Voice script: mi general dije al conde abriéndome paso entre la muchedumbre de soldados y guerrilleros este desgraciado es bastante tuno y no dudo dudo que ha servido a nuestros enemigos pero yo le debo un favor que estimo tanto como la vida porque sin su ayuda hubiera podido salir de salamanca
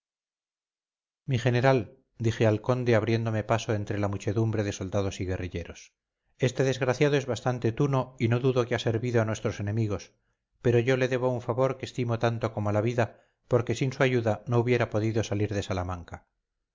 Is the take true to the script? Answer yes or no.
no